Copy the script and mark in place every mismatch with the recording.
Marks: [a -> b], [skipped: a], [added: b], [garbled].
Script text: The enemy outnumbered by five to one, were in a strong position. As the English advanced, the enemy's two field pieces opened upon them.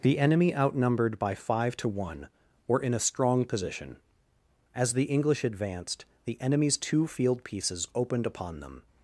The enemy outnumbered by five to one, were in a strong position. As the English advanced, the enemy's two field pieces opened upon them.